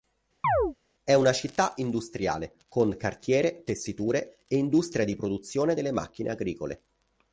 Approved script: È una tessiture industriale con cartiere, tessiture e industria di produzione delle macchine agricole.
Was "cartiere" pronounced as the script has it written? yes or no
yes